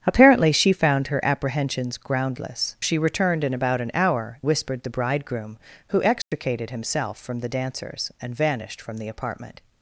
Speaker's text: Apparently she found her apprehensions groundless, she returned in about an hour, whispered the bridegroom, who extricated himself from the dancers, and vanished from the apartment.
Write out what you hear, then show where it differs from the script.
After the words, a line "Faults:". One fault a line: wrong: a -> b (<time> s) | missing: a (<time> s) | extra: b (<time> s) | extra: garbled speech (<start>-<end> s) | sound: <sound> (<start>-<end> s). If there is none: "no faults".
Apparently she found her apprehensions groundless, she returned in about an hour, whispered the bridegroom, who extricated himself from the dancers, and vanished from the apartment.
Faults:
sound: dropout (6.2-6.3 s)